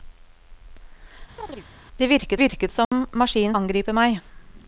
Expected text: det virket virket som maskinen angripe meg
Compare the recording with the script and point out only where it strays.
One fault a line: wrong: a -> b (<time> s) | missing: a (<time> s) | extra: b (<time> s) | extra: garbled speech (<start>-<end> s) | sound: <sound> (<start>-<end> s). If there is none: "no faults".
sound: chirp (1.4-1.6 s)
sound: dropout (2.8-2.9 s)